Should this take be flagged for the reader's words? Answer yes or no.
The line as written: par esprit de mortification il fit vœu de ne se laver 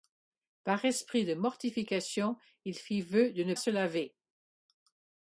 no